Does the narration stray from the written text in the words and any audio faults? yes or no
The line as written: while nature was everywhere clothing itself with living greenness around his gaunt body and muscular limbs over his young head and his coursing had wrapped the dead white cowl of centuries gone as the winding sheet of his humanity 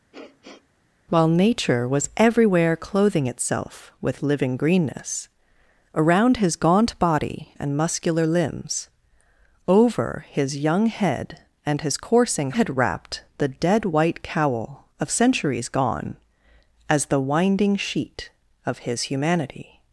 yes